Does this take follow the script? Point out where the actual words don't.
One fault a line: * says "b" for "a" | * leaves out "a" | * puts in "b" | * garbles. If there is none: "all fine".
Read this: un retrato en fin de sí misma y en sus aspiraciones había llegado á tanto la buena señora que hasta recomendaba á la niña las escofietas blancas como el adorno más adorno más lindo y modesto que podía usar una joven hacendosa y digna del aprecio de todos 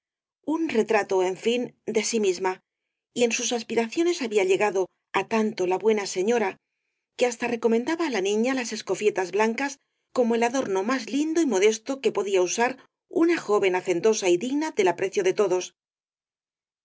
* leaves out "adorno más"